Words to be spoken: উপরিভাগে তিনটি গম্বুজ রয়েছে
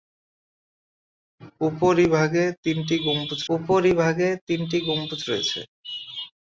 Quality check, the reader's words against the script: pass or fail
fail